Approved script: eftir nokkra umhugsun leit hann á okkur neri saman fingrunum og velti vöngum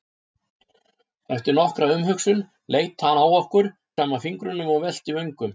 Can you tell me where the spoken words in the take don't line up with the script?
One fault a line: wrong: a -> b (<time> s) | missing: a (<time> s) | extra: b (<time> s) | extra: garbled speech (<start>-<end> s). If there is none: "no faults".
missing: neri (3.7 s)